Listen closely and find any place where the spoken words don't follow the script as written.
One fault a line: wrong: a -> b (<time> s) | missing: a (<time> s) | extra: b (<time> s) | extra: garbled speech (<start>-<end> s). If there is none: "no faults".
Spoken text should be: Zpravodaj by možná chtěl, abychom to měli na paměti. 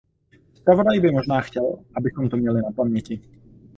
no faults